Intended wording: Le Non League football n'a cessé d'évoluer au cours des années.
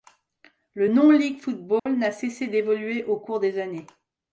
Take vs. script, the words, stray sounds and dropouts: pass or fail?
fail